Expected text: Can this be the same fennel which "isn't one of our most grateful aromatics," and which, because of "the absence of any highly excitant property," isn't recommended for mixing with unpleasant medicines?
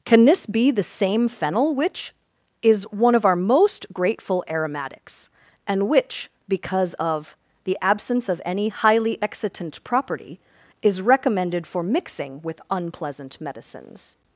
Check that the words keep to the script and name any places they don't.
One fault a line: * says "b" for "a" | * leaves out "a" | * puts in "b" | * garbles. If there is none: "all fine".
* says "is" for "isn't"
* says "is" for "isn't"